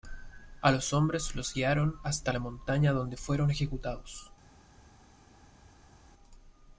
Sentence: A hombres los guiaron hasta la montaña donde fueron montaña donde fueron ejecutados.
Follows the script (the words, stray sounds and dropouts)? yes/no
no